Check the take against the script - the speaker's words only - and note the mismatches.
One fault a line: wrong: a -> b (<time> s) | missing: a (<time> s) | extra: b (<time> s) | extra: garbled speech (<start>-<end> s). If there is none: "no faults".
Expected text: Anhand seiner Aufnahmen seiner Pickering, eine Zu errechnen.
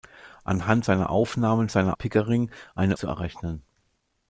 no faults